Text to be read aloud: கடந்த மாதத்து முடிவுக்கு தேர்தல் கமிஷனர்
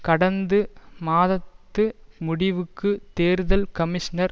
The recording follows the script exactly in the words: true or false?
true